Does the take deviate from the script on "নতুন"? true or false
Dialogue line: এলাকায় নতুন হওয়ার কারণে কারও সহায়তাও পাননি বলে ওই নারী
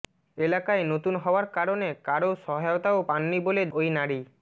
false